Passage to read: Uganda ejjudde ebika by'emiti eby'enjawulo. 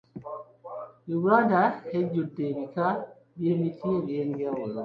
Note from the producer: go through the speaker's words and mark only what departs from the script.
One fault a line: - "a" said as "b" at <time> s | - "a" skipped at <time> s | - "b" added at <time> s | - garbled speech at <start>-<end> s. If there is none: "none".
none